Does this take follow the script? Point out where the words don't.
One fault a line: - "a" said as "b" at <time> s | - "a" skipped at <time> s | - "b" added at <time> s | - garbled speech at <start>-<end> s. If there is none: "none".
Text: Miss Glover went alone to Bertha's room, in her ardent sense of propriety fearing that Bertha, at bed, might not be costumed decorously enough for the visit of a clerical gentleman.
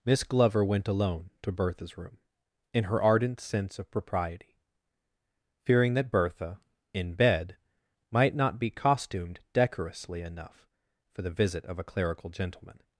- "at" said as "in" at 6.9 s